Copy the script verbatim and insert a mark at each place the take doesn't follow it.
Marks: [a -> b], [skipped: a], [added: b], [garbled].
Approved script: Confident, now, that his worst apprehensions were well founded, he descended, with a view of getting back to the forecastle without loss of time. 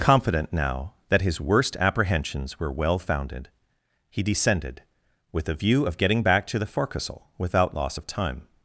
Confident, now, that his worst apprehensions were well founded, he descended, with a view of getting back to the forecastle without loss of time.